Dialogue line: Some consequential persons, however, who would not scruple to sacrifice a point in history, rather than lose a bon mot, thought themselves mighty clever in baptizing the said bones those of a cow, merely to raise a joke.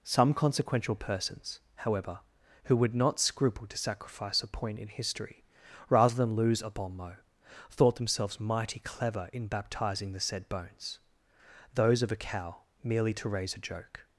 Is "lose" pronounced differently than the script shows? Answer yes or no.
no